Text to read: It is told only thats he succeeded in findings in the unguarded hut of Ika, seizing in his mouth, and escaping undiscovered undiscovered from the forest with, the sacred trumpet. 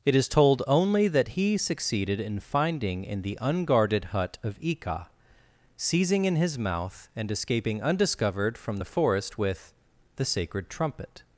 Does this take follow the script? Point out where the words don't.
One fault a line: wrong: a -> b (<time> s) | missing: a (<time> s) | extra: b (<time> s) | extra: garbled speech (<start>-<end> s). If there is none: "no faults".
wrong: thats -> that (1.1 s)
wrong: findings -> finding (2.4 s)
missing: undiscovered (8.6 s)